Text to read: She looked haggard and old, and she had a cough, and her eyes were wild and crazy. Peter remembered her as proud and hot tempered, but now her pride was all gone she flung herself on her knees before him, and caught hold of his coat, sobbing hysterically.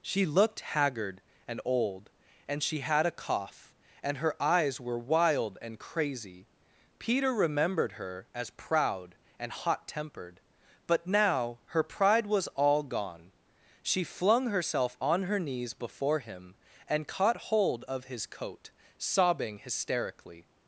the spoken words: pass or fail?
pass